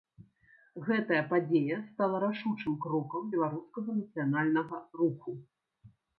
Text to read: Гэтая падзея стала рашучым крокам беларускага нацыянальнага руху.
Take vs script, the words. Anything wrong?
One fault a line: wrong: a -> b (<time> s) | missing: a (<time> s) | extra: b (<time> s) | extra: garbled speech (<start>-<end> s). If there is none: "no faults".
no faults